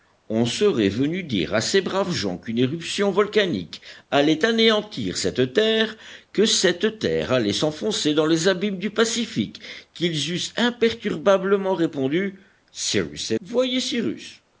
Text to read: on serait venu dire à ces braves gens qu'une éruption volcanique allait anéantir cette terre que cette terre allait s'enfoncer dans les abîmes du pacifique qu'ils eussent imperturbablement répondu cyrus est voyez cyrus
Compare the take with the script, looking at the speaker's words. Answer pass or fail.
pass